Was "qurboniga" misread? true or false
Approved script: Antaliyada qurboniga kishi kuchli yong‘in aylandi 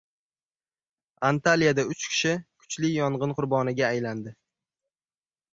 true